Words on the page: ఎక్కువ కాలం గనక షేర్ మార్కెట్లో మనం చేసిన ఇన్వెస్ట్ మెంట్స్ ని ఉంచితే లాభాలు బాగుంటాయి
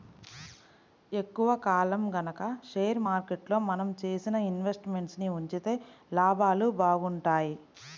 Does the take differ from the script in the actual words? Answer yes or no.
no